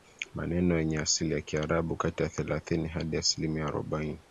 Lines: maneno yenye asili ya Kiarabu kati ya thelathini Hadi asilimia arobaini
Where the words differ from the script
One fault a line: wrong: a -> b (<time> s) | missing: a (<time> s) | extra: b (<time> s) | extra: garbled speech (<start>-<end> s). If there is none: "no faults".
no faults